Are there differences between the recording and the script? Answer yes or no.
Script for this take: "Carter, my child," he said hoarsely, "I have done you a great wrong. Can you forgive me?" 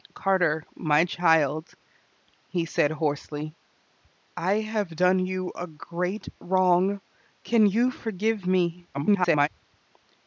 yes